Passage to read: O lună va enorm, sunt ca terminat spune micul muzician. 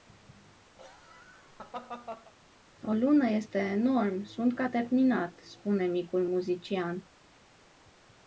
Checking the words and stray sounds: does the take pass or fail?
fail